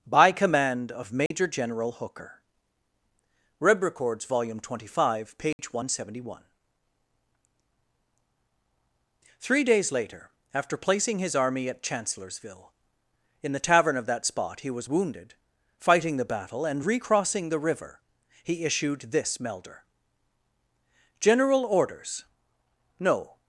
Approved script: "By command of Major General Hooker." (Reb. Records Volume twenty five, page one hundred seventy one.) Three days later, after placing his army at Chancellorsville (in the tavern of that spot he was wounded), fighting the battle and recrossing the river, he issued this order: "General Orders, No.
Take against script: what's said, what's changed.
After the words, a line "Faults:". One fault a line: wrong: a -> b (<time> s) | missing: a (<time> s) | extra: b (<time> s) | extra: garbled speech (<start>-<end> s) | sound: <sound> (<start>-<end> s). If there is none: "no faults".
"By command of Major General Hooker." (Reb. Records Volume twenty five, page one hundred seventy one.) Three days later, after placing his army at Chancellorsville (in the tavern of that spot he was wounded), fighting the battle and recrossing the river, he issued this melder: "General Orders, No.
Faults:
sound: dropout (1.3-1.3 s)
sound: dropout (5.5-5.6 s)
wrong: order -> melder (19.4 s)